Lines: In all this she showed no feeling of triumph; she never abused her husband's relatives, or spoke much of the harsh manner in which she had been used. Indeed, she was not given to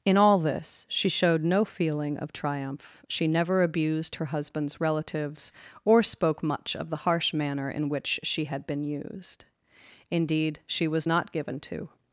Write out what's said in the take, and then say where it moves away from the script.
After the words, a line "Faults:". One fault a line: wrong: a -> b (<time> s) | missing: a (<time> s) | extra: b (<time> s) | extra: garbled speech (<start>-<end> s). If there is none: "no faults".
In all this she showed no feeling of triumph; she never abused her husband's relatives, or spoke much of the harsh manner in which she had been used. Indeed, she was not given to
Faults:
no faults